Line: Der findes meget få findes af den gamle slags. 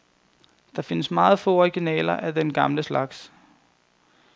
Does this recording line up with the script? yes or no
no